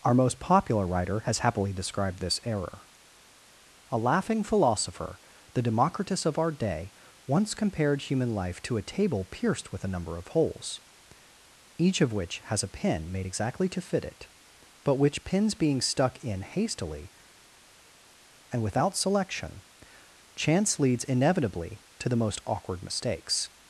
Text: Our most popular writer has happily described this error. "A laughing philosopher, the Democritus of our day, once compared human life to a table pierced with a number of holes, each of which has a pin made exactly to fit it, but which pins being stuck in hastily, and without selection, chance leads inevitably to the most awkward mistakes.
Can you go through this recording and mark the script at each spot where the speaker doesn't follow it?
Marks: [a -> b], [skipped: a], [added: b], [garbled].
Our most popular writer has happily described this error. "A laughing philosopher, the Democritus of our day, once compared human life to a table pierced with a number of holes, each of which has a pin made exactly to fit it, but which pins being stuck in hastily, and without selection, chance leads inevitably to the most awkward mistakes.